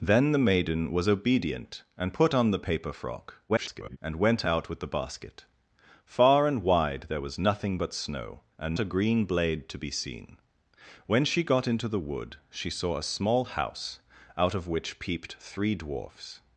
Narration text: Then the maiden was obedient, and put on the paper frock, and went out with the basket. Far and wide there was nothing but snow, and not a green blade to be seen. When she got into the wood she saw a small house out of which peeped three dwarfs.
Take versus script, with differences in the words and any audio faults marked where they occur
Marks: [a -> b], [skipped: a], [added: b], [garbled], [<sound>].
Then the maiden was obedient, and put on the paper frock, [garbled] and went out with the basket. Far and wide there was nothing but snow, and [skipped: not] a green blade to be seen. When she got into the wood she saw a small house out of which peeped three dwarfs.